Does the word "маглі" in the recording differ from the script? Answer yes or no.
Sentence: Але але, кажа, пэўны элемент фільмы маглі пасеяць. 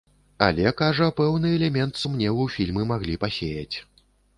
no